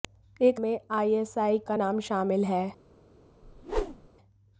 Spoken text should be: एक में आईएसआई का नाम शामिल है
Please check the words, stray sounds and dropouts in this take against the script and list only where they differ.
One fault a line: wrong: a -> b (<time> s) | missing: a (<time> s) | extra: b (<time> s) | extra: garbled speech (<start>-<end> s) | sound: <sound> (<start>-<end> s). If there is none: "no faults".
sound: whoosh (3.4-4.1 s)